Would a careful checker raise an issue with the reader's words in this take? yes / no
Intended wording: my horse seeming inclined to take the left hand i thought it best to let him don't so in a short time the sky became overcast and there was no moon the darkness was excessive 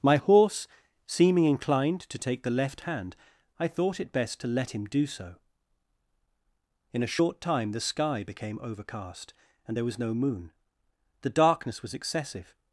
yes